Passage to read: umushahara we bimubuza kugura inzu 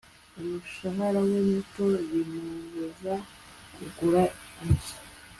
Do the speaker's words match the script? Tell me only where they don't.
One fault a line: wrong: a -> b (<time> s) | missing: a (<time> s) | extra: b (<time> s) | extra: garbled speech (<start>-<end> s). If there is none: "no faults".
extra: muto (1.5 s)